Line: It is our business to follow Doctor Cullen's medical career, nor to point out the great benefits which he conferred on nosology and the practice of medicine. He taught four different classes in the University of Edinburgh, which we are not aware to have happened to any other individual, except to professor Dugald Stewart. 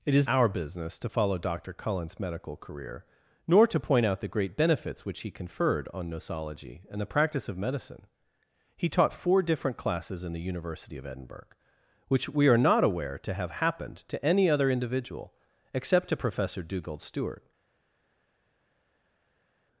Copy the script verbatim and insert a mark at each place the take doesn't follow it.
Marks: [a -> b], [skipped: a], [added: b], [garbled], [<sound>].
It is our business to follow Doctor Cullen's medical career, nor to point out the great benefits which he conferred on nosology and the practice of medicine. He taught four different classes in the University of Edinburgh, which we are not aware to have happened to any other individual, except to professor Dugald Stewart.